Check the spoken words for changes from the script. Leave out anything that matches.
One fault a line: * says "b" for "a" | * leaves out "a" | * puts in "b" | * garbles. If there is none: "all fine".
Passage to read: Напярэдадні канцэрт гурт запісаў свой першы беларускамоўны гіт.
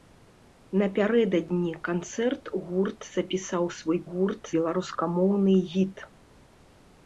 * says "гурт" for "першы"